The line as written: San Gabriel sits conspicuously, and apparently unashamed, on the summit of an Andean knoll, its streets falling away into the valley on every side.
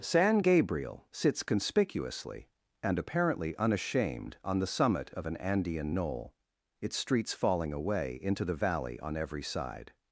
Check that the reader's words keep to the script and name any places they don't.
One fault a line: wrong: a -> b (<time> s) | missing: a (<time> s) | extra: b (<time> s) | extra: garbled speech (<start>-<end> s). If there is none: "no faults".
no faults